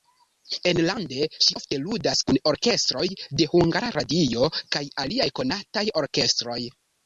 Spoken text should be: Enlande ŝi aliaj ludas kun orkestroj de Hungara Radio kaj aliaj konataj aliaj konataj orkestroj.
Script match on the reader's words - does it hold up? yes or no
no